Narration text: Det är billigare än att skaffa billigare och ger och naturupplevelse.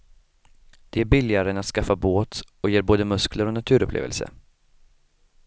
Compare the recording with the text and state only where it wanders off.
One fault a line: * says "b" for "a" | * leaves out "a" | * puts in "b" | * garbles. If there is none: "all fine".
* says "båt" for "billigare"
* puts in "både muskler"